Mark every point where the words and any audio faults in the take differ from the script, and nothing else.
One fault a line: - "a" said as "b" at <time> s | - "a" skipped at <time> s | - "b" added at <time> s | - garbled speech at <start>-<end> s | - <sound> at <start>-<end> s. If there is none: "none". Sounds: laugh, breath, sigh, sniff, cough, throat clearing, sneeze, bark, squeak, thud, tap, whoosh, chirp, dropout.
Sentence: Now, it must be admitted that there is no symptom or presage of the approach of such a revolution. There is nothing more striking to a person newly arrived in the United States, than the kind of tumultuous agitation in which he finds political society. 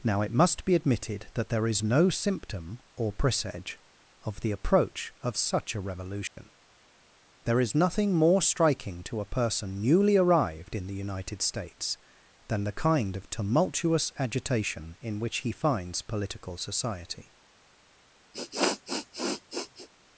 - dropout at 6.3-6.4 s
- sniff at 18.3-19.9 s